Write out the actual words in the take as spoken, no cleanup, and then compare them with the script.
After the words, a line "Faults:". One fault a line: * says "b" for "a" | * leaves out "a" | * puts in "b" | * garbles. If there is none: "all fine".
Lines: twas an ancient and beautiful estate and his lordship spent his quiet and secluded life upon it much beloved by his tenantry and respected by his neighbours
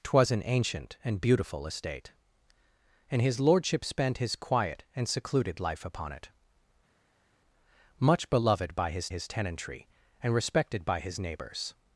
twas an ancient and beautiful estate and his lordship spent his quiet and secluded life upon it much beloved by his his tenantry and respected by his neighbours
Faults:
* puts in "his"